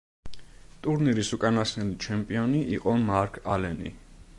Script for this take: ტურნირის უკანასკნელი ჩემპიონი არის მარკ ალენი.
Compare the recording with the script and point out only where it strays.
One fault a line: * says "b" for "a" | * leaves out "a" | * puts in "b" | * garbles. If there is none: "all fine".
* says "იყო" for "არის"